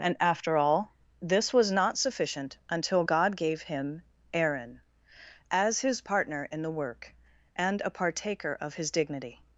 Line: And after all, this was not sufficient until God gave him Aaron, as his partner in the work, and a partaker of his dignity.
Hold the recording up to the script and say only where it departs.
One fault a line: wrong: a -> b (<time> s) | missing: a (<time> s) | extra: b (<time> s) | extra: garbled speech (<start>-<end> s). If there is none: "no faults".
no faults